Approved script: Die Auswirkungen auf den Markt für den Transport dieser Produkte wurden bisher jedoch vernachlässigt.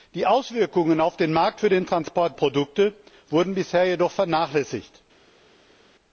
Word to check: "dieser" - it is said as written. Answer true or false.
false